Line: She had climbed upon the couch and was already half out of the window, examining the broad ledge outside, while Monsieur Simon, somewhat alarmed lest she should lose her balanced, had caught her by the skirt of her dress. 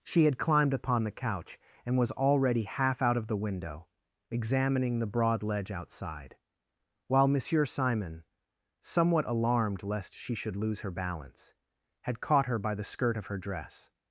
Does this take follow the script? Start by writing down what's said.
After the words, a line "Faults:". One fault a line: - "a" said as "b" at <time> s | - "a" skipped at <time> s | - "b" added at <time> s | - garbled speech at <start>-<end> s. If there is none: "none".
She had climbed upon the couch and was already half out of the window, examining the broad ledge outside, while Monsieur Simon, somewhat alarmed lest she should lose her balance, had caught her by the skirt of her dress.
Faults:
- "balanced" said as "balance" at 10.9 s